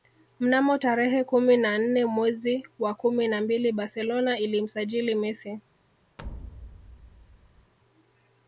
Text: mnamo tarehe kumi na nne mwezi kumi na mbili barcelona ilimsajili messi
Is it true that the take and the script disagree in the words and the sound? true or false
true